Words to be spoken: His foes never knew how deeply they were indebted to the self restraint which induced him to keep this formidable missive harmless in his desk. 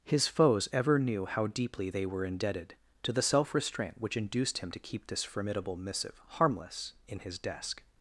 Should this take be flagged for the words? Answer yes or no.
yes